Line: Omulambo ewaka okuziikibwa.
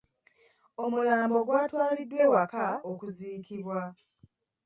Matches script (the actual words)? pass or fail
fail